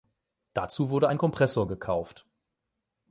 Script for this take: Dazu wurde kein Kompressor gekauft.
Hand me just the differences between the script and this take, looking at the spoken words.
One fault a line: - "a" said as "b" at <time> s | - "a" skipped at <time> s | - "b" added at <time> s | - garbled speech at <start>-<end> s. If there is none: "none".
- "kein" said as "ein" at 1.1 s